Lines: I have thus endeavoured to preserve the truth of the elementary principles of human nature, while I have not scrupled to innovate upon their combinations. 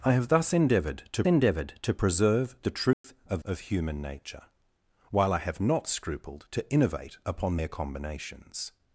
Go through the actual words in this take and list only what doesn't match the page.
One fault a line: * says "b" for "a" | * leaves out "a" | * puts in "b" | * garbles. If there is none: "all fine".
* puts in "endeavoured to"
* leaves out "the elementary principles"